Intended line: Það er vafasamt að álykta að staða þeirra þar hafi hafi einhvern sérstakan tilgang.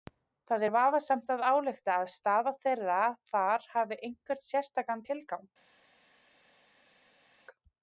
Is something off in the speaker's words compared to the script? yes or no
yes